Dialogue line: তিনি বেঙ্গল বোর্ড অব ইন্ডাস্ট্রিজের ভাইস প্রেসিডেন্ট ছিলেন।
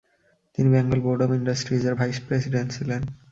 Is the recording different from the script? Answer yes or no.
no